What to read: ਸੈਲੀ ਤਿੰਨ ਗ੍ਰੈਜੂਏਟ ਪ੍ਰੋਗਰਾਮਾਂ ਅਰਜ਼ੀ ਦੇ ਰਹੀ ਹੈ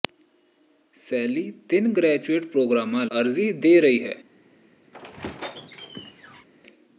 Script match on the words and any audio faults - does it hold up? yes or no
no